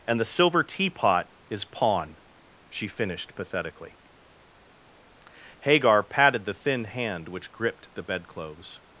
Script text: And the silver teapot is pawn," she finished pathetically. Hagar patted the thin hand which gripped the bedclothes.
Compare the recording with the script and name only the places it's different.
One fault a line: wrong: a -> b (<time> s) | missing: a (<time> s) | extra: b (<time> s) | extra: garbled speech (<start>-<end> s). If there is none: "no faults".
no faults